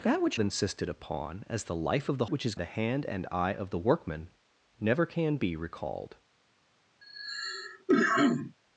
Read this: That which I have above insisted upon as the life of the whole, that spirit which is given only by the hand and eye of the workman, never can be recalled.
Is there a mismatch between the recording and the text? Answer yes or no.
yes